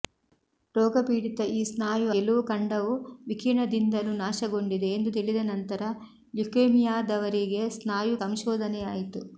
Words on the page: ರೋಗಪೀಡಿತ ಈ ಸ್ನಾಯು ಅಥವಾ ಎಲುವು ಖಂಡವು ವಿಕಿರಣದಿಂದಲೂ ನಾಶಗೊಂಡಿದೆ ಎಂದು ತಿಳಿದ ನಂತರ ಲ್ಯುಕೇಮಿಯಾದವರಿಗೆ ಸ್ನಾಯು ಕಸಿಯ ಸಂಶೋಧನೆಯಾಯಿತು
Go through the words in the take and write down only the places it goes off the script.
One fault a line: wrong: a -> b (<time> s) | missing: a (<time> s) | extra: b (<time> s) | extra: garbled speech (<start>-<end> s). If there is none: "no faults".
missing: ಅಥವಾ (2.1 s)
missing: ಕಸಿಯ (8.2 s)